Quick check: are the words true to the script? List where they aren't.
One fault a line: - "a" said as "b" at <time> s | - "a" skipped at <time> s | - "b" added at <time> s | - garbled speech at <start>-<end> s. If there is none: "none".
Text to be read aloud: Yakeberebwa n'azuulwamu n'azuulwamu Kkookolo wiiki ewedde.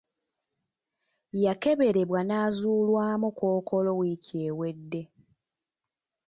- "n'azuulwamu" skipped at 3.3 s